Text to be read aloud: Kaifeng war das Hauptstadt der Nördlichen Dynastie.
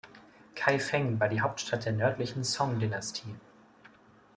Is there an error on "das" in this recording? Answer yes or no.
yes